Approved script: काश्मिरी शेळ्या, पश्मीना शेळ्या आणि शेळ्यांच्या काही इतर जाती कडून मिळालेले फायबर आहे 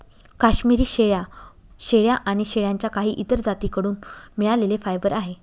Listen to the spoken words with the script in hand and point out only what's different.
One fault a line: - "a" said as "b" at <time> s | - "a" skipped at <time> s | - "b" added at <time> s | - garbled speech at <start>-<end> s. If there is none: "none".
- "पश्मीना" skipped at 1.2 s